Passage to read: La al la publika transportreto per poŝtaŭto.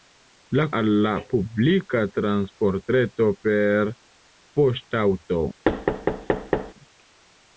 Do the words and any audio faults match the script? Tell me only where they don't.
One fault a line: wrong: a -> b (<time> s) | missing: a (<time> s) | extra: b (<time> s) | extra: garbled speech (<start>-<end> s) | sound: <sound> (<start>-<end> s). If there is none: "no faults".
sound: thud (5.7-6.7 s)